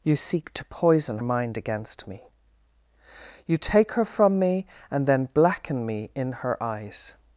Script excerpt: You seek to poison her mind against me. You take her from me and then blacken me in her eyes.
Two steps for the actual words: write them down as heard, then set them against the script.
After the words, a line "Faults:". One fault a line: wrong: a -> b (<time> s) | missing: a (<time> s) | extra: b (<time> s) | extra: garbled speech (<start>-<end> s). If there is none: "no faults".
You seek to poison mind against me. You take her from me and then blacken me in her eyes.
Faults:
missing: her (1.2 s)